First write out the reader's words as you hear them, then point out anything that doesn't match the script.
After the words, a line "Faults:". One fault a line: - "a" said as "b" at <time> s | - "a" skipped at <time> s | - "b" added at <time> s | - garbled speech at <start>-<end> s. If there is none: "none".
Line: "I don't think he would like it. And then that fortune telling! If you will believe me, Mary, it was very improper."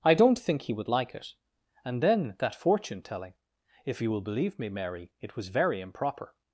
"I don't think he would like it. And then that fortune telling! If you will believe me, Mary, it was very improper."
Faults:
none